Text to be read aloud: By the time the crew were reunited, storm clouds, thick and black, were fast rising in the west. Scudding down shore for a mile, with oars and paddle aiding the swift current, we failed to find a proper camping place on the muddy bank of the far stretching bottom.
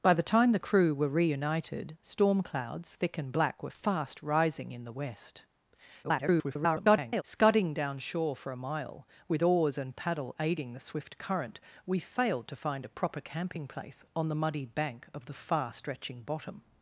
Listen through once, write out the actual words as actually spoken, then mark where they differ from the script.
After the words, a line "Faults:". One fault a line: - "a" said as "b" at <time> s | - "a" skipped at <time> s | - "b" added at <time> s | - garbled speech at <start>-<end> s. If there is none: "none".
By the time the crew were reunited, storm clouds, thick and black, were fast rising in the west. [garbled] Scudding down shore for a mile, with oars and paddle aiding the swift current, we failed to find a proper camping place on the muddy bank of the far stretching bottom.
Faults:
- garbled speech at 6.0-7.2 s